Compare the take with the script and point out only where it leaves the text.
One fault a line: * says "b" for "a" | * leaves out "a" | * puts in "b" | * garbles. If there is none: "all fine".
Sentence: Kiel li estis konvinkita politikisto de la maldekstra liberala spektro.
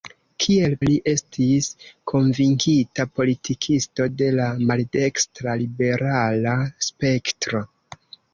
all fine